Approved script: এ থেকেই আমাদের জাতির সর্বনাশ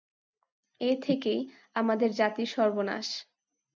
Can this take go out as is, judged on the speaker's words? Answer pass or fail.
pass